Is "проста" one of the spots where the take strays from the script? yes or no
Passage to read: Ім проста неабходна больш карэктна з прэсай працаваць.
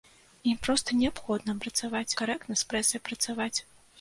no